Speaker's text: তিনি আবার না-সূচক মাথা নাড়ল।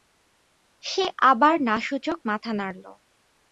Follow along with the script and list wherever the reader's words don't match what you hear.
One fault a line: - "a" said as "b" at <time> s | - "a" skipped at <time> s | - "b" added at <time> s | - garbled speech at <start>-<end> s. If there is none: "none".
- "তিনি" said as "সে" at 0.8 s